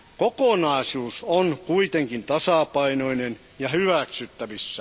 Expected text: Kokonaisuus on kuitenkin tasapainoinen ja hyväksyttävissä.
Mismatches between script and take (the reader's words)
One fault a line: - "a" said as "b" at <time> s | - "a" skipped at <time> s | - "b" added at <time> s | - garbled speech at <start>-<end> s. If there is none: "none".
none